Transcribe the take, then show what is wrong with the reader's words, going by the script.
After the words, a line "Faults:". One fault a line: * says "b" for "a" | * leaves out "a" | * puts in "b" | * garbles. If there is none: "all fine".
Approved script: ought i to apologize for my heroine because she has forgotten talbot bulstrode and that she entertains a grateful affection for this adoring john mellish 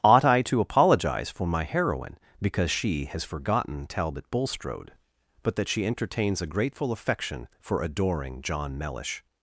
ought i to apologize for my heroine because she has forgotten talbot bulstrode but that she entertains a grateful affection for adoring john mellish
Faults:
* says "but" for "and"
* leaves out "this"